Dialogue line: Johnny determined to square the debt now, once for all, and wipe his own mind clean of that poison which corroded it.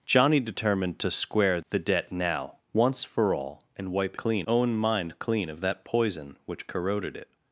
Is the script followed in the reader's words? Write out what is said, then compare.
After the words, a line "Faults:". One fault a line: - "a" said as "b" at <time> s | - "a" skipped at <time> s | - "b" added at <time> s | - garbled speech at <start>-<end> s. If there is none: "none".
Johnny determined to square the debt now, once for all, and wipe clean own mind clean of that poison which corroded it.
Faults:
- "his" said as "clean" at 4.2 s